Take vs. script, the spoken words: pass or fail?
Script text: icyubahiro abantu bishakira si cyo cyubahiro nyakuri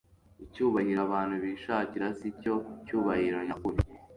pass